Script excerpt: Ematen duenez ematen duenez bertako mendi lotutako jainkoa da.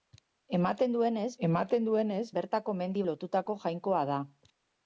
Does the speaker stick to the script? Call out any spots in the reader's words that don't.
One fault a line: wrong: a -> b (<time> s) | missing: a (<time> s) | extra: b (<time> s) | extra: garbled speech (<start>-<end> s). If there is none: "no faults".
no faults